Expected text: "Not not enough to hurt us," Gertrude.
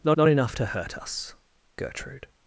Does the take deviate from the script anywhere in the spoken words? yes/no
no